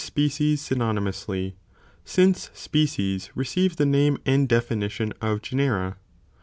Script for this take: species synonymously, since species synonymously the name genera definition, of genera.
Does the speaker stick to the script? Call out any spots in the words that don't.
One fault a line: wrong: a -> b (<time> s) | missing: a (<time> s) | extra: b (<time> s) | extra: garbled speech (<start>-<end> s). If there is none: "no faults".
wrong: synonymously -> receive (3.4 s)
wrong: genera -> and (4.2 s)